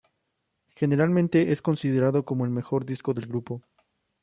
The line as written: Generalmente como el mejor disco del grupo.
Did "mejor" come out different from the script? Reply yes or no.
no